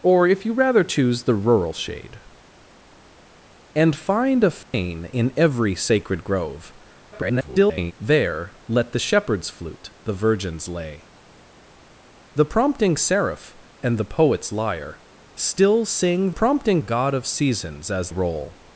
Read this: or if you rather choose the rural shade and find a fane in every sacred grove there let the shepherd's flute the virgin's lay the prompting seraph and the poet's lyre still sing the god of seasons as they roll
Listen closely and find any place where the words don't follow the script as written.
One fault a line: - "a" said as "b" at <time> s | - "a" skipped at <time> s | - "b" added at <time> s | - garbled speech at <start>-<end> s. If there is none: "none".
- garbled speech at 7.1-7.9 s
- "the" said as "prompting" at 16.3 s
- "they" skipped at 18.1 s